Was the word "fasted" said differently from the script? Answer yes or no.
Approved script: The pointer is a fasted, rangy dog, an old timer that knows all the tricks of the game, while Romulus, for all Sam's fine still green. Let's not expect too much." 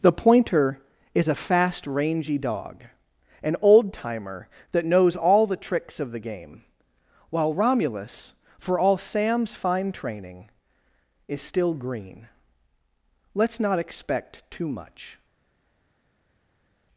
yes